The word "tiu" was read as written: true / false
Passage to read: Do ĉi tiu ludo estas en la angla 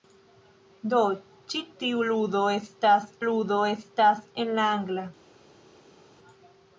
true